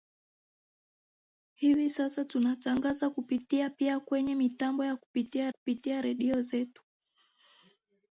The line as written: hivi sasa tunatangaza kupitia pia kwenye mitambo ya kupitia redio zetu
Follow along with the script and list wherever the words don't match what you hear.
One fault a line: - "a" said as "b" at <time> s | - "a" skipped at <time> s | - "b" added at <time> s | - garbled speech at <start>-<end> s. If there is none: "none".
- "kupitia" added at 5.5 s